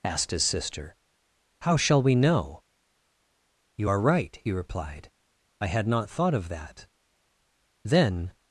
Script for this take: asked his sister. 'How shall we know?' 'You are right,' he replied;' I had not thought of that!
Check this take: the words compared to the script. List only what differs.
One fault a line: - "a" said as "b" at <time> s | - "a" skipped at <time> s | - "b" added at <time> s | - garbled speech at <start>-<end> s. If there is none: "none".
- "Then" added at 7.8 s